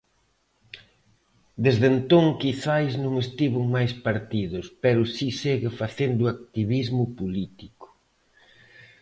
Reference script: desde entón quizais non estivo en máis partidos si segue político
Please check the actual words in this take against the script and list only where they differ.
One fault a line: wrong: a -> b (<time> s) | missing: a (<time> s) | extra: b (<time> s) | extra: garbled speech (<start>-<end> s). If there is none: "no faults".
extra: pero (4.8 s)
extra: facendo activismo (5.8 s)